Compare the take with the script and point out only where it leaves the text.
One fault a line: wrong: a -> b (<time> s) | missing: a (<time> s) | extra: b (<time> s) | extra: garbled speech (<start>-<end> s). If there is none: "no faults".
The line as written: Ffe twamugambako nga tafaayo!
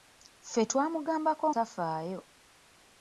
missing: nga (1.5 s)